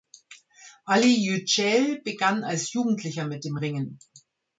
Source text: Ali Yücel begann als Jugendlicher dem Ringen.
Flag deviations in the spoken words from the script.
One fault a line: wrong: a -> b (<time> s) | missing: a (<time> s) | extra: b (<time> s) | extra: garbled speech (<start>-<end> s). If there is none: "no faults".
extra: mit (3.3 s)